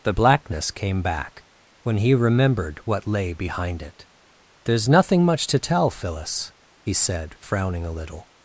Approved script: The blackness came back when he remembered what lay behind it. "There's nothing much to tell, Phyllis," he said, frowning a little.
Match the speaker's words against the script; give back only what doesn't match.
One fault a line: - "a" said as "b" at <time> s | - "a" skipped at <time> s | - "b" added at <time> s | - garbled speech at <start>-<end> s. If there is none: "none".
none